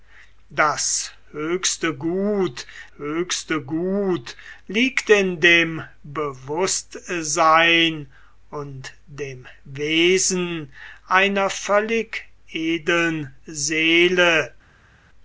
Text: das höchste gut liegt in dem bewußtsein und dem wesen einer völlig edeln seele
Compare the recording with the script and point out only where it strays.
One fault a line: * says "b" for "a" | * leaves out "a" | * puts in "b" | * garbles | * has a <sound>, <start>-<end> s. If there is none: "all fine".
* puts in "höchste gut"